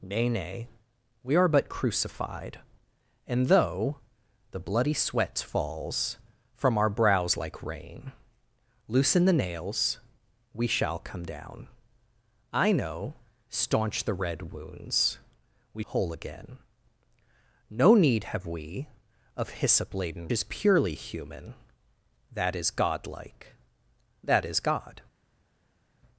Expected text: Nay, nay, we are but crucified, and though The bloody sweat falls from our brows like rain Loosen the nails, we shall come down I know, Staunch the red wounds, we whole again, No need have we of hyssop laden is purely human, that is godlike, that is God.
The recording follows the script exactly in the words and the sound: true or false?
true